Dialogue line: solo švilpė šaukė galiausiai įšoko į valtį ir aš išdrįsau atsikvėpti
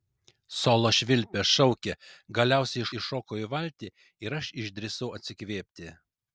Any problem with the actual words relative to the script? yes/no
no